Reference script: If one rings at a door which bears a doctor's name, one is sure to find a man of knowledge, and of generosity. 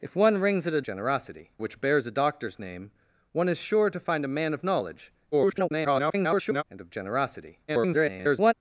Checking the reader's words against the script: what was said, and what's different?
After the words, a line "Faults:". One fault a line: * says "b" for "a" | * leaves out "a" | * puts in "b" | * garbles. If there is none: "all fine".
If one rings at a generosity which bears a doctor's name, one is sure to find a man of knowledge, [garbled] and of generosity. [garbled]
Faults:
* says "generosity" for "door"
* garbles
* garbles